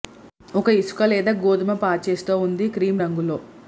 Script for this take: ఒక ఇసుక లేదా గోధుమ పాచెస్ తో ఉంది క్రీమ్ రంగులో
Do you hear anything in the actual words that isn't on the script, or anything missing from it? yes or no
no